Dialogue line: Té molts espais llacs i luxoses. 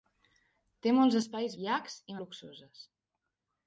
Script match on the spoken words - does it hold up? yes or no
yes